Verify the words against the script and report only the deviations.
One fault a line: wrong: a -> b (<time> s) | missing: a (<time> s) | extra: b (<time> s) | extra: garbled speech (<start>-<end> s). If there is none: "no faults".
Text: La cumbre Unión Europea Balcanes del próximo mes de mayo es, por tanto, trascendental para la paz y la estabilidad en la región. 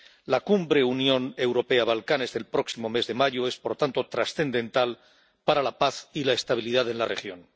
no faults